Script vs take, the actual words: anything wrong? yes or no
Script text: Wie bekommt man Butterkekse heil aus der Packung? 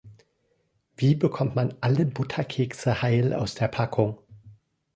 yes